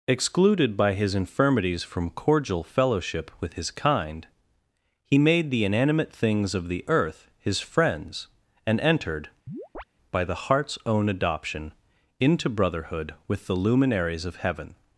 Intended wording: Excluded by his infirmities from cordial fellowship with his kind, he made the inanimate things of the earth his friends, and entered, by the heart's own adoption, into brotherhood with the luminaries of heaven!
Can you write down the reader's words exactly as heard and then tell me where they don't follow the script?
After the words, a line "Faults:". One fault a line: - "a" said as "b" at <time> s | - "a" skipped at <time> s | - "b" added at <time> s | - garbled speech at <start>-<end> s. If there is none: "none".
Excluded by his infirmities from cordial fellowship with his kind, he made the inanimate things of the earth his friends, and entered, by the heart's own adoption, into brotherhood with the luminaries of heaven!
Faults:
none